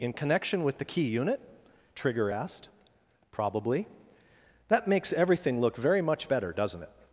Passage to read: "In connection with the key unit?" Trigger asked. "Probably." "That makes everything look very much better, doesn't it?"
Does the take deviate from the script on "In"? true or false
false